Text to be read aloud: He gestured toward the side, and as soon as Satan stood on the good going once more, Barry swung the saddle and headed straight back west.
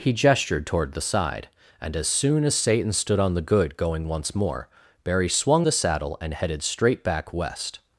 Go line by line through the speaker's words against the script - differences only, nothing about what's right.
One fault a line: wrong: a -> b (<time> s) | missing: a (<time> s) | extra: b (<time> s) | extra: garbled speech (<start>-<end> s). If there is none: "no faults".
no faults